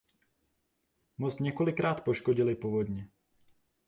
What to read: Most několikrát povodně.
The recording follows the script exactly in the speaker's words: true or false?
false